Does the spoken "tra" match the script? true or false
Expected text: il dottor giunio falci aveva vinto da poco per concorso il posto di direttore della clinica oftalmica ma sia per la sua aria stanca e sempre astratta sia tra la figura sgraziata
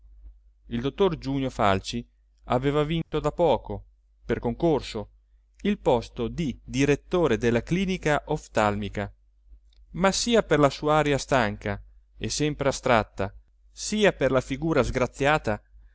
false